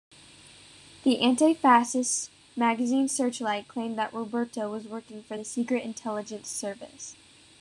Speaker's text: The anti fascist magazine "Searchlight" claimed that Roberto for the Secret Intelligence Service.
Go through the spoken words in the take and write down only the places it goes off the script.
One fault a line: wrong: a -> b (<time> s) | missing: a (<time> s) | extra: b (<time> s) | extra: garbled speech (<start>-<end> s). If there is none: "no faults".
extra: was working (4.7 s)